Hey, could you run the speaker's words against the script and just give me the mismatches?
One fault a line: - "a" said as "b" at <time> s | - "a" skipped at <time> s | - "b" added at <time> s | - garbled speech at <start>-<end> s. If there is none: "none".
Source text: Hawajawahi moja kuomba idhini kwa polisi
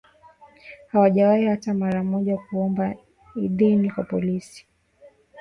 - "hata mara" added at 1.4 s